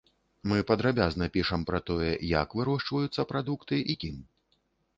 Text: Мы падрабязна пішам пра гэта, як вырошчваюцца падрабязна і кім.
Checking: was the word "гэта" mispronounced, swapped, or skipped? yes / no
yes